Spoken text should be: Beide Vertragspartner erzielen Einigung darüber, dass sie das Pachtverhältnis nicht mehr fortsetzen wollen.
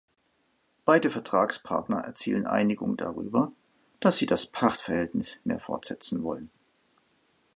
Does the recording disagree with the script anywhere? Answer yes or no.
yes